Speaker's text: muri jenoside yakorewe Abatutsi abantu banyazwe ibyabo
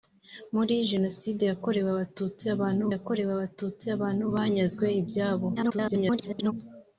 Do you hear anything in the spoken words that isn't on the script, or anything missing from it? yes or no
yes